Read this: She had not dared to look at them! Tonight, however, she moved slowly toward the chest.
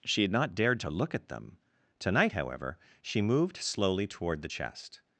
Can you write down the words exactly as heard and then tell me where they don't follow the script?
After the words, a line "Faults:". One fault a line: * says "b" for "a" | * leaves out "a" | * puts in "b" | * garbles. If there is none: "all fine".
She had not dared to look at them! Tonight, however, she moved slowly toward the chest.
Faults:
all fine